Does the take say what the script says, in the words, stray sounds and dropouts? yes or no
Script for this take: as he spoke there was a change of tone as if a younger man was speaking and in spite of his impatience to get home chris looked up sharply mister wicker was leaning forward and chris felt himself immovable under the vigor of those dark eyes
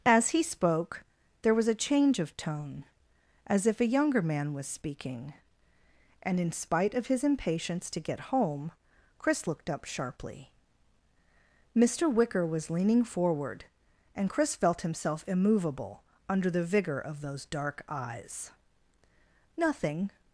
no